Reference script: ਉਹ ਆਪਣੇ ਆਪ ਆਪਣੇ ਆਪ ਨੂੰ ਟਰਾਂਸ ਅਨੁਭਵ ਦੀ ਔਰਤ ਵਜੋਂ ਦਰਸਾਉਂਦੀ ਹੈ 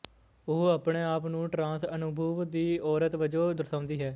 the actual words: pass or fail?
fail